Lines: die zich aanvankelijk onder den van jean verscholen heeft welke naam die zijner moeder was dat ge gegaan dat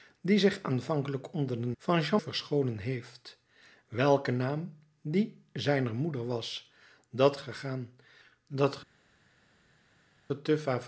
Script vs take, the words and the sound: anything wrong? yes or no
no